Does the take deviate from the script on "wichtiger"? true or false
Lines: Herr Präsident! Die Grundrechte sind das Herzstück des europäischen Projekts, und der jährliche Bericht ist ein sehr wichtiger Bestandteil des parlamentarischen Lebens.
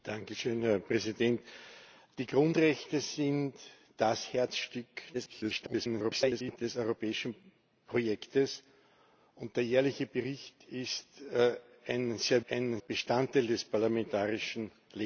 true